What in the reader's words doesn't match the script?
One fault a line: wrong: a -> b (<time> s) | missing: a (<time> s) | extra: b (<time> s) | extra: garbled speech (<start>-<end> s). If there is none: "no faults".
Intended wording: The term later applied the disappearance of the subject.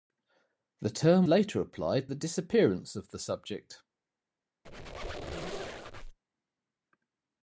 no faults